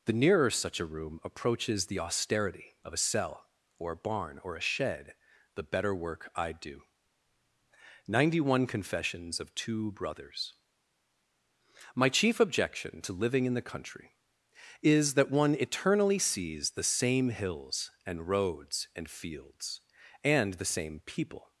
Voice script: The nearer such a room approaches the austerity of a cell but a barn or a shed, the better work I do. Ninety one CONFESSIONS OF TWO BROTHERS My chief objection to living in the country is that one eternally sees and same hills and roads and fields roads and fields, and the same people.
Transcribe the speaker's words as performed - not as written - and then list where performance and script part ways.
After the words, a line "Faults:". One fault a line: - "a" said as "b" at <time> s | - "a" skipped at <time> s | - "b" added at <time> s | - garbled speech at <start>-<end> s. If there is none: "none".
The nearer such a room approaches the austerity of a cell or a barn or a shed, the better work I do. Ninety one CONFESSIONS OF TWO BROTHERS My chief objection to living in the country is that one eternally sees the same hills and roads and fields, and the same people.
Faults:
- "but" said as "or" at 3.8 s
- "and" said as "the" at 16.7 s
- "roads and fields" skipped at 19.8 s